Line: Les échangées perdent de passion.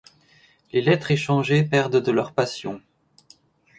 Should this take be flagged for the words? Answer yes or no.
yes